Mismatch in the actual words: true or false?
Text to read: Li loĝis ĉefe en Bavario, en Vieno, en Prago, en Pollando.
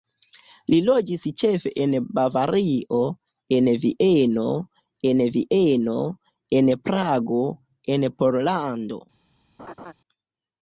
true